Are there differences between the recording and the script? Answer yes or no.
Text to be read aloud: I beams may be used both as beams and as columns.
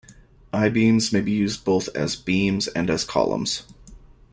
no